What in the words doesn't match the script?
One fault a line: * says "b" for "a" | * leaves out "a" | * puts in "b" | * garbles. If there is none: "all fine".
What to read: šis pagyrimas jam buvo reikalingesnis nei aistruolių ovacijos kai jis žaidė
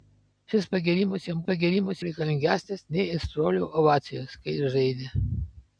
* says "pagyrimas" for "buvo"